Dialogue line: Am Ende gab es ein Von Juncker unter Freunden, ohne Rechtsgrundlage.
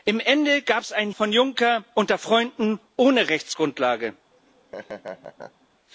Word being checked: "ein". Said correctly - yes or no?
yes